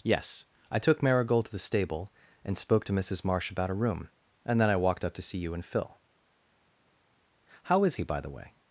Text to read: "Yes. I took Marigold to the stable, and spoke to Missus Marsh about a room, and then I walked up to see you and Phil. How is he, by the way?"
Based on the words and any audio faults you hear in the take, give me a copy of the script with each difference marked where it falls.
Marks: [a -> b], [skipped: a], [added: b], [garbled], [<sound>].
"Yes. I took Marigold to the stable, and spoke to Missus Marsh about a room, and then I walked up to see you and Phil. How is he, by the way?"